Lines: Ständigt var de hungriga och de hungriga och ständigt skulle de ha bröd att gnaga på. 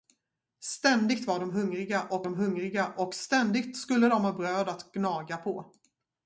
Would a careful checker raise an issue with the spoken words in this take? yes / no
no